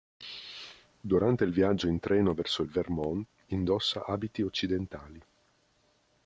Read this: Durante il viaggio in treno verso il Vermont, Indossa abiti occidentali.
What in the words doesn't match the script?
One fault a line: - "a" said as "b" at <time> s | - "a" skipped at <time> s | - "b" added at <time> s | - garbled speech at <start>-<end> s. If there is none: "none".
none